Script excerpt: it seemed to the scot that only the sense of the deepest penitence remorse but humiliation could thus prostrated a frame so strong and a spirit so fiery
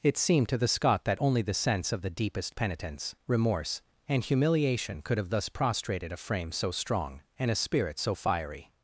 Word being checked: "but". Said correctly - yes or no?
no